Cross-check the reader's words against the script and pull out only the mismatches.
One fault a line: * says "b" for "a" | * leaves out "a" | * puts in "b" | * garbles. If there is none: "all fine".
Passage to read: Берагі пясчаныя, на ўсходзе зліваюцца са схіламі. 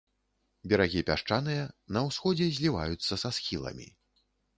all fine